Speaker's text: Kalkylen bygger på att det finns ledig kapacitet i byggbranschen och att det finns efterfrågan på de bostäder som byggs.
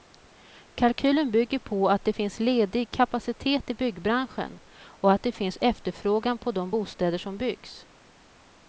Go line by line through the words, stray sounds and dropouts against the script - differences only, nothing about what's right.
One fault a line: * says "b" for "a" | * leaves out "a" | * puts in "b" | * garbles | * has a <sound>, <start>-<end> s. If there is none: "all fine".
all fine